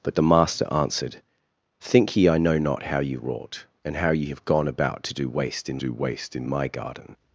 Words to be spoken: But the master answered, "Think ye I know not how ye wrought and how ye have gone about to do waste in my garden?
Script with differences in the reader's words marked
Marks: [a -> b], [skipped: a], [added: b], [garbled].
But the master answered, "Think ye I know not how ye wrought and how ye have gone about to do waste in [added: do waste in] my garden?